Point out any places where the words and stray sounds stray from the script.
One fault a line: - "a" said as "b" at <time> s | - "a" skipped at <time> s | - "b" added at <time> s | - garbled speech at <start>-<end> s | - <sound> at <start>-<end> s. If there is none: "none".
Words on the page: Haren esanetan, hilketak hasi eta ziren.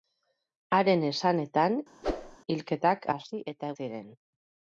- whoosh at 2.0-2.4 s